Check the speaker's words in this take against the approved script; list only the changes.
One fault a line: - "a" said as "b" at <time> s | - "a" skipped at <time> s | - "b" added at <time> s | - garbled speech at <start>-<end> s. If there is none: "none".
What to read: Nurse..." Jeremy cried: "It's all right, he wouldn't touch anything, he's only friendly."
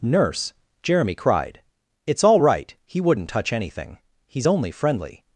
none